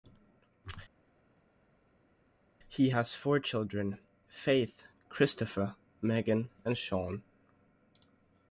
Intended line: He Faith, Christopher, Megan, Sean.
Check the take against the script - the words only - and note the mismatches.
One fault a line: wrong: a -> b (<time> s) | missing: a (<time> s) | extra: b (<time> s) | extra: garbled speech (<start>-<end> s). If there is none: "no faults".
extra: has four children (2.9 s)
extra: and (6.6 s)